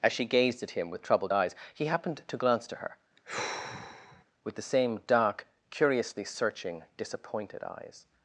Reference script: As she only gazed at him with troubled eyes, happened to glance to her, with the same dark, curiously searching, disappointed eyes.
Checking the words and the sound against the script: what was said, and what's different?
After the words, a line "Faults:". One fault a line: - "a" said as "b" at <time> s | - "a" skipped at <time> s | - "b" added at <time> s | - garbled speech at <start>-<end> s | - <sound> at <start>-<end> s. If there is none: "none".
As she gazed at him with troubled eyes, he happened to glance to her, with the same dark, curiously searching, disappointed eyes.
Faults:
- "only" skipped at 0.2 s
- "he" added at 1.7 s
- sigh at 3.2-4.3 s